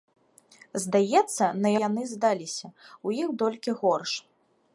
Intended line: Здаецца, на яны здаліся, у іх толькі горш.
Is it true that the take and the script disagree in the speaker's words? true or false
false